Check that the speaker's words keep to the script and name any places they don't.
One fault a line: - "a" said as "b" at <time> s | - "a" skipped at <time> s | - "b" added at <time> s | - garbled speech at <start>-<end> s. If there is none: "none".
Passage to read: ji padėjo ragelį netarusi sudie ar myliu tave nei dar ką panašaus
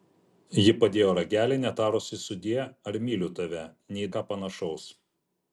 - "dar" skipped at 4.1 s